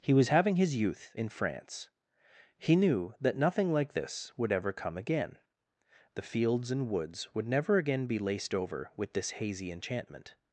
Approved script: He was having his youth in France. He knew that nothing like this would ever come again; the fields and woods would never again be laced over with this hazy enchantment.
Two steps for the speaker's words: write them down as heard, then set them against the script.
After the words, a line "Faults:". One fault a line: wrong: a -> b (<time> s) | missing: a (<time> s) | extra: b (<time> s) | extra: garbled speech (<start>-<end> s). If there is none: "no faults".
He was having his youth in France. He knew that nothing like this would ever come again; the fields and woods would never again be laced over with this hazy enchantment.
Faults:
no faults